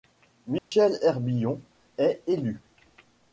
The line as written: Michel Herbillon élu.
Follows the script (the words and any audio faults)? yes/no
no